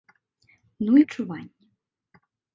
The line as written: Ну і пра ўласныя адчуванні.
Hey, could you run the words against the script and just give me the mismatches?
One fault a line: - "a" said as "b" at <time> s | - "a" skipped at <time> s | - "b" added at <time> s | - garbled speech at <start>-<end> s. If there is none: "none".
- "пра ўласныя" skipped at 1.0 s